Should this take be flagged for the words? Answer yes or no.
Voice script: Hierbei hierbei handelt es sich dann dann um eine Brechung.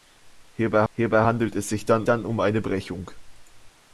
no